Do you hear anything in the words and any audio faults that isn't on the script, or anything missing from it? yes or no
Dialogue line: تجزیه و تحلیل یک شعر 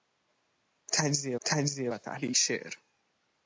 yes